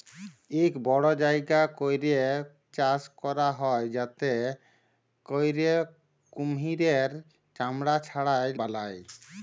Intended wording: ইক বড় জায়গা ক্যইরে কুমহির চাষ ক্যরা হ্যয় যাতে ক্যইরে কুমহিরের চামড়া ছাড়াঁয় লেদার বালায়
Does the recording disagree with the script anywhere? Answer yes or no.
yes